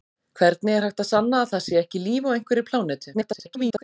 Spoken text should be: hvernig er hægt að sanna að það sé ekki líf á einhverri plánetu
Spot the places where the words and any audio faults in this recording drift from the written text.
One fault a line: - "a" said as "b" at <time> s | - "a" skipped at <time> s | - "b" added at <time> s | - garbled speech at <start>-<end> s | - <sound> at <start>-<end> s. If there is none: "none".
- garbled speech at 3.1-3.8 s